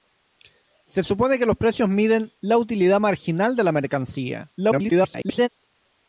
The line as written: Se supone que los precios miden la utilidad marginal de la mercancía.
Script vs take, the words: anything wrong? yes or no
yes